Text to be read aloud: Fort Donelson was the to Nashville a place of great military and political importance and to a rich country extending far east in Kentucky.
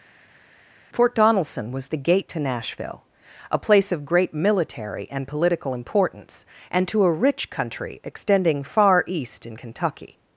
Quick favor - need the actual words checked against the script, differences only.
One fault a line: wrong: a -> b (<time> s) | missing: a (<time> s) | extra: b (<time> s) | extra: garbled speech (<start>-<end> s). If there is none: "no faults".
extra: gate (2.0 s)